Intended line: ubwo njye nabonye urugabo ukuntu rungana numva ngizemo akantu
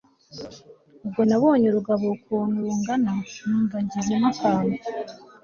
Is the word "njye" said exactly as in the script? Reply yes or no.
no